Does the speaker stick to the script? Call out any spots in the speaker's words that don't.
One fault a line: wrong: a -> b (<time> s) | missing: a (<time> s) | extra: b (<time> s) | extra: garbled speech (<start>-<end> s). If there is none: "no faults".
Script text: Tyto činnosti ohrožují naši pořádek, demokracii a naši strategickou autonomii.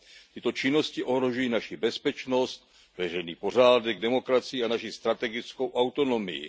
extra: bezpečnost veřejný (1.8 s)